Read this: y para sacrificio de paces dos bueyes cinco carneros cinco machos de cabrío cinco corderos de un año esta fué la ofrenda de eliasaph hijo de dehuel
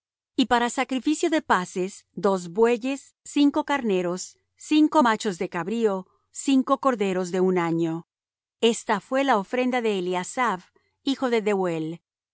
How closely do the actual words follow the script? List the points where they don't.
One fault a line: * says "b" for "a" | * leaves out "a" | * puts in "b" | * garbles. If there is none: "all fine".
all fine